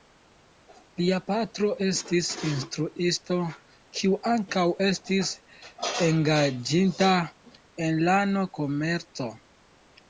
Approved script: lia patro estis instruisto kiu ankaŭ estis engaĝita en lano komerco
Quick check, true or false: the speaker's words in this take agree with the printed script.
true